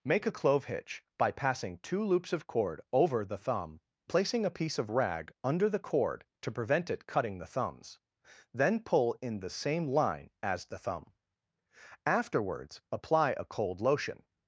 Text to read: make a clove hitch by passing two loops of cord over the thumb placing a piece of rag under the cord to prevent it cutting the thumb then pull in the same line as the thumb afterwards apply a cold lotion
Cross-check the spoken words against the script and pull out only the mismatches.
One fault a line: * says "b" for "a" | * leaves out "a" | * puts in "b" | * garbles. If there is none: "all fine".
* says "thumbs" for "thumb"